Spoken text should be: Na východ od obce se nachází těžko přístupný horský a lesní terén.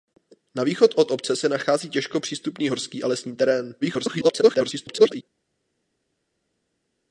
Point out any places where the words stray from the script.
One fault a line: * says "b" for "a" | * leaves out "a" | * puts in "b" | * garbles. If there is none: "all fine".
* garbles